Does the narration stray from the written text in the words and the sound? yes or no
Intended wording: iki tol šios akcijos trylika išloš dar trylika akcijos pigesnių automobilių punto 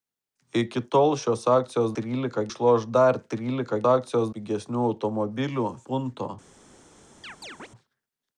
yes